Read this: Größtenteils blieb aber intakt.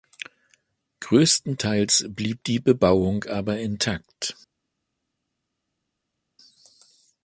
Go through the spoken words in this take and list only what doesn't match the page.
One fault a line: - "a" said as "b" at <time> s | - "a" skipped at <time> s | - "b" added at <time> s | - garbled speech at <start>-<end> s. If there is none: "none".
- "die Bebauung" added at 2.4 s